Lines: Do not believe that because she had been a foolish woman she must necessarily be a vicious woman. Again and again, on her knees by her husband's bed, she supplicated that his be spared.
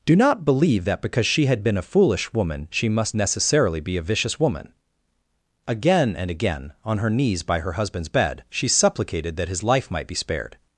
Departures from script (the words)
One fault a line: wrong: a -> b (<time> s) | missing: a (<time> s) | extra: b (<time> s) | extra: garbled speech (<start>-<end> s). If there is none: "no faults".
extra: life might (9.6 s)